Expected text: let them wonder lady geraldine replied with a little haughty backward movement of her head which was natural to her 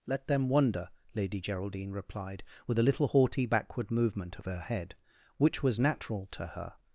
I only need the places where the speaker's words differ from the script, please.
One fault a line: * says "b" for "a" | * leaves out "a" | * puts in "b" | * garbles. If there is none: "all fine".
all fine